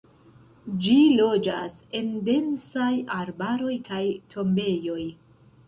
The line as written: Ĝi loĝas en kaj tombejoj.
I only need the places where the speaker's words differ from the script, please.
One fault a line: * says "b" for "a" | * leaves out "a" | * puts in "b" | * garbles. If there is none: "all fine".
* puts in "densaj arbaroj"